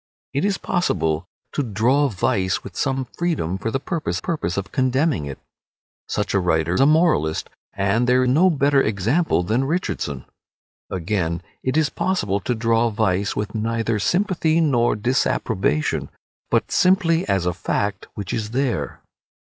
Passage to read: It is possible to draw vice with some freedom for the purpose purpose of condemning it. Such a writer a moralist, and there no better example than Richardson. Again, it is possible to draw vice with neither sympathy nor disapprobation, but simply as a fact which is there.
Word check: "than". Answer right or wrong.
right